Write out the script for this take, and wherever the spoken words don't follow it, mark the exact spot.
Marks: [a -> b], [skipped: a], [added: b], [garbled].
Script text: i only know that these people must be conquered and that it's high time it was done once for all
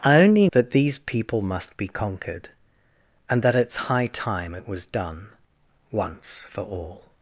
i only [skipped: know] that these people must be conquered and that it's high time it was done once for all